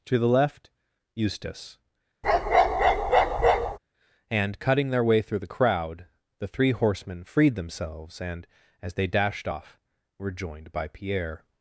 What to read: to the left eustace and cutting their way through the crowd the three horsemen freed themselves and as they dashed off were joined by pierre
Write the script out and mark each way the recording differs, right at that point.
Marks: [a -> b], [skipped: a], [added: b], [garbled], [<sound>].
to the left eustace [bark] and cutting their way through the crowd the three horsemen freed themselves and as they dashed off were joined by pierre